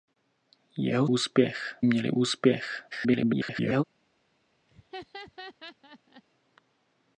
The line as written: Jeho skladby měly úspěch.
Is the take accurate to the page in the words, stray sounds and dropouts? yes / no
no